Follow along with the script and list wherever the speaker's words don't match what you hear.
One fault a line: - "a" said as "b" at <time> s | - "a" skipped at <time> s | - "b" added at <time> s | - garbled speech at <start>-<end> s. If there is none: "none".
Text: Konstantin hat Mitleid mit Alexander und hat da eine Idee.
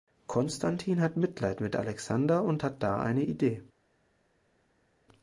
none